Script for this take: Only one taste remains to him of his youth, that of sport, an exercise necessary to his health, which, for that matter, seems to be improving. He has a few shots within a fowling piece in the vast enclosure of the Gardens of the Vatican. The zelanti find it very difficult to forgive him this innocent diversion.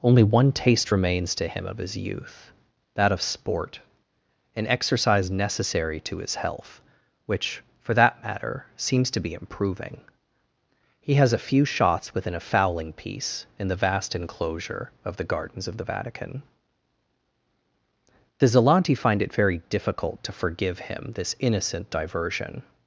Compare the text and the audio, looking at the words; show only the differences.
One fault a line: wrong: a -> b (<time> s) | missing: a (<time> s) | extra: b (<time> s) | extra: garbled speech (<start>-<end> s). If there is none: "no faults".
no faults